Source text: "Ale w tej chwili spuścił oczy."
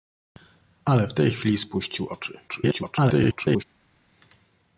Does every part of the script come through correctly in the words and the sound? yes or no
no